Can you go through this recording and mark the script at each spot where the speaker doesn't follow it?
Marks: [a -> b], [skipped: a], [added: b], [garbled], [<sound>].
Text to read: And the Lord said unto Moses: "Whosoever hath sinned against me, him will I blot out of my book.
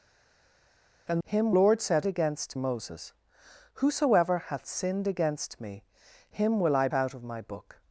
And [the -> him] Lord said [unto -> against] Moses: "Whosoever hath sinned against me, him will I [skipped: blot] out of my book.